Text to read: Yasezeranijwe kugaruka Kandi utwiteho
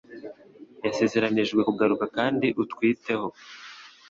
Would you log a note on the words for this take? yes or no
no